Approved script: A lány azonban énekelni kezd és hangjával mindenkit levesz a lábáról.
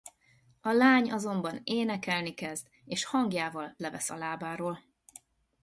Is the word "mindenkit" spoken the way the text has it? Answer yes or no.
no